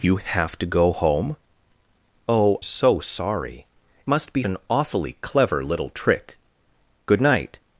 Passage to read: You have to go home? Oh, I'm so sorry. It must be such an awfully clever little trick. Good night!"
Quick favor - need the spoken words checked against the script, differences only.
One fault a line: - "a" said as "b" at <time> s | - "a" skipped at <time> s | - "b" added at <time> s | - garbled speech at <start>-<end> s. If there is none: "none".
- "I'm" skipped at 2.6 s
- "It" skipped at 3.7 s
- "such" skipped at 4.4 s